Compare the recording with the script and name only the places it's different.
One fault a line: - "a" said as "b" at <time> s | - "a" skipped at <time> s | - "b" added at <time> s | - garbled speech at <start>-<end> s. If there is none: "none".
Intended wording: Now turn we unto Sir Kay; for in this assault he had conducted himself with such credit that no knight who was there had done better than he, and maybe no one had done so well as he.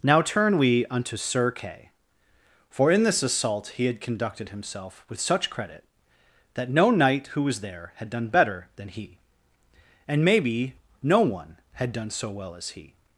none